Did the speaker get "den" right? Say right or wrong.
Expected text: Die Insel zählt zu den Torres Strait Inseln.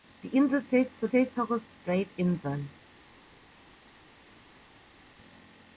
wrong